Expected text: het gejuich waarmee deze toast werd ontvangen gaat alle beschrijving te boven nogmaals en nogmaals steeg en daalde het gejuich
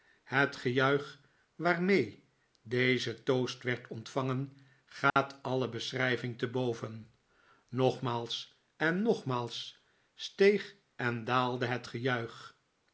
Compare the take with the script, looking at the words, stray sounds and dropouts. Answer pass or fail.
fail